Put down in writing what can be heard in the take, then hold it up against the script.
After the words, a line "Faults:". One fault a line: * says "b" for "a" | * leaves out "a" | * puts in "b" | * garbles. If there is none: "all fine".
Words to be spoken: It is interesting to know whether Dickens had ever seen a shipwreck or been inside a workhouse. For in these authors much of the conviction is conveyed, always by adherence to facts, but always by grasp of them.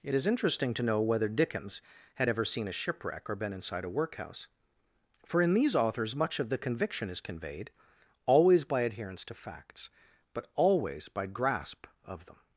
It is interesting to know whether Dickens had ever seen a shipwreck or been inside a workhouse. For in these authors much of the conviction is conveyed, always by adherence to facts, but always by grasp of them.
Faults:
all fine